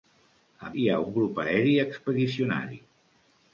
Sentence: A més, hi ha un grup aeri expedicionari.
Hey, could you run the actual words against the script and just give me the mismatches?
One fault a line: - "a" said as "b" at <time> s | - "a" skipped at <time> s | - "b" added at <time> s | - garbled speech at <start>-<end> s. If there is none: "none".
- "més" skipped at 0.7 s